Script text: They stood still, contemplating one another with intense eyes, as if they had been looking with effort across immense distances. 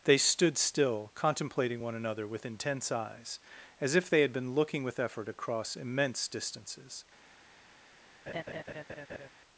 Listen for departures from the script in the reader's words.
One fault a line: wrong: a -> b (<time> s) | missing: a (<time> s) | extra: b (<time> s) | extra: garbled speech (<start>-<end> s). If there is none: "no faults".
no faults